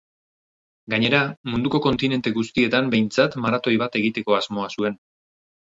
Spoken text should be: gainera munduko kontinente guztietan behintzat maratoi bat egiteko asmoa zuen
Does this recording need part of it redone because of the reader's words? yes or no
no